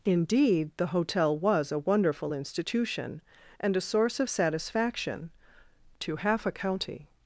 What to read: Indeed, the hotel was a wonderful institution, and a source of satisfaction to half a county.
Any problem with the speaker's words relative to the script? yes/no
no